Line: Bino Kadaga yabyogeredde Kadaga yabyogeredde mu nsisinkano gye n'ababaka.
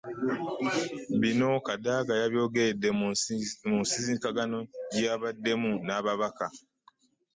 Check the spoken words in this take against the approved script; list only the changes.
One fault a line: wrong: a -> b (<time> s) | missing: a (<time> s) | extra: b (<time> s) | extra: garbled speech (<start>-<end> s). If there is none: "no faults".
missing: Kadaga yabyogeredde (2.9 s)
extra: yabaddemu (5.1 s)